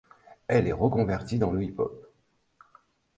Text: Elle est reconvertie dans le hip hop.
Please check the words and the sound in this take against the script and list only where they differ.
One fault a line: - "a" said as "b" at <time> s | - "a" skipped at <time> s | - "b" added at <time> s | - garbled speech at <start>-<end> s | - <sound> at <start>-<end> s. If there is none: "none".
none